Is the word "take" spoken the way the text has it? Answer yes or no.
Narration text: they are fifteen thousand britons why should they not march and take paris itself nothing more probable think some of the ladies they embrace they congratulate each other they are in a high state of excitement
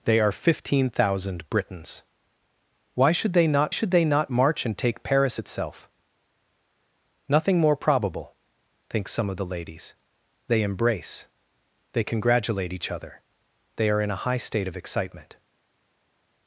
yes